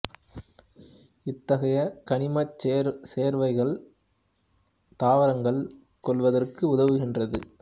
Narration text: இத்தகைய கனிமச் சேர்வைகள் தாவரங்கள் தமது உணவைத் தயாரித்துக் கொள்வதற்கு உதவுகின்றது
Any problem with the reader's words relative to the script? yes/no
yes